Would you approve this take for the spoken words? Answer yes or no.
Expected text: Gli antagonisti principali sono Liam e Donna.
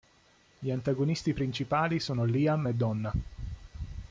yes